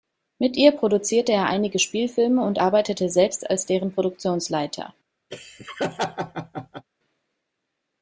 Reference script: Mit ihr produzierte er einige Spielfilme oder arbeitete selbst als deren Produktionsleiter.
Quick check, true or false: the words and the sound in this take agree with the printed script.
false